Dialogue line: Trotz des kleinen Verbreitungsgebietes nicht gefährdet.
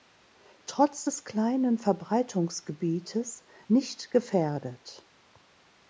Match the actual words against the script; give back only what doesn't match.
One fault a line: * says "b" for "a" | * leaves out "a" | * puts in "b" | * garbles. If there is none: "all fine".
all fine